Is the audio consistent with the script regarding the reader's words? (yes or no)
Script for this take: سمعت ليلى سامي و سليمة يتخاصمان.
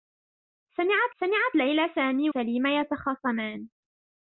no